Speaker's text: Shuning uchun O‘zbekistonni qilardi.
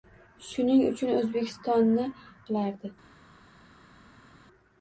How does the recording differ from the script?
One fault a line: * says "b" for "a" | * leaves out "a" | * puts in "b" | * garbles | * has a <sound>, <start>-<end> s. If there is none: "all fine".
all fine